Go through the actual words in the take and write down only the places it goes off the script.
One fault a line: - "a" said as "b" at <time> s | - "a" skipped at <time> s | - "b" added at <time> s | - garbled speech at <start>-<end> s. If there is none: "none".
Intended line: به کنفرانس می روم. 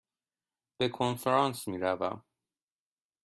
none